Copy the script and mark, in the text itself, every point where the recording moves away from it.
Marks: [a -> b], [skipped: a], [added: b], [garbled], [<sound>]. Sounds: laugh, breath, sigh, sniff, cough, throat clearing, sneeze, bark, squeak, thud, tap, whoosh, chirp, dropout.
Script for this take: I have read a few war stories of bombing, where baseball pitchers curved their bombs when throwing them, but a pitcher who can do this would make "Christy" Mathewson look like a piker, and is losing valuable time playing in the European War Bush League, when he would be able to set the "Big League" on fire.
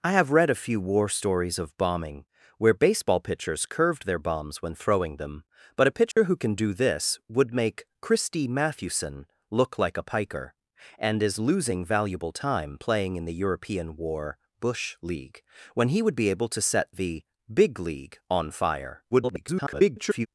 I have read a few war stories of bombing, where baseball pitchers curved their bombs when throwing them, but a pitcher [dropout] who can do this would make "Christy" Mathewson look like a piker, and is losing valuable time playing in the European War Bush League, when he would be able to set the "Big League" on fire. [garbled]